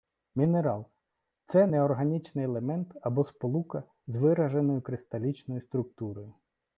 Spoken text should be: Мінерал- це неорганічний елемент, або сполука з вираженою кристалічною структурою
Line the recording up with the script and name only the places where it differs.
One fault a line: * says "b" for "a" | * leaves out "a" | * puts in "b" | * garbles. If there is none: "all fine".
all fine